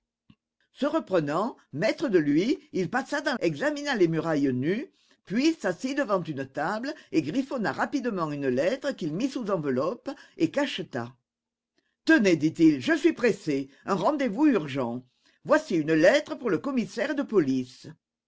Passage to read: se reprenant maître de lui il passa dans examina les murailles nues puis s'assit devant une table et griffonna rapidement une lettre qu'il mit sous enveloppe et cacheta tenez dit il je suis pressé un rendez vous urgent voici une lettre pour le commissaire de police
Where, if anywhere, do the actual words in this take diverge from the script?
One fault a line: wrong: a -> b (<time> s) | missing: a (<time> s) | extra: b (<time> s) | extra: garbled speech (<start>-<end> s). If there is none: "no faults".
no faults